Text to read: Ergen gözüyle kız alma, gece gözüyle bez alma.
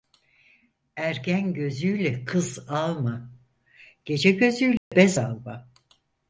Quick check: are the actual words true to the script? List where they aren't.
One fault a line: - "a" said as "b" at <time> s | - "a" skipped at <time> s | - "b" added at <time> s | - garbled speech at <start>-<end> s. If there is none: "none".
none